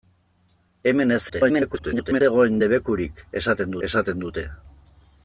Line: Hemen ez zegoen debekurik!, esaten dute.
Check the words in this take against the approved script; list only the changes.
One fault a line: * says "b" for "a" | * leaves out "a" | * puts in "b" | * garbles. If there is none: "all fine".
* garbles
* puts in "esaten"